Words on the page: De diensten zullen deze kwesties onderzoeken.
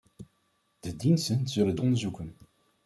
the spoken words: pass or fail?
fail